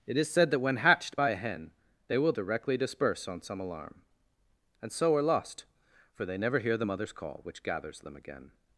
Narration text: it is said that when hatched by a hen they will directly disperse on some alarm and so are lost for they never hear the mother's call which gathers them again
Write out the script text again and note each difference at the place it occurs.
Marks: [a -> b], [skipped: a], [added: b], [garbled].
it is said that when hatched by a hen they will directly disperse on some alarm and so are lost for they never hear the mother's call which gathers them again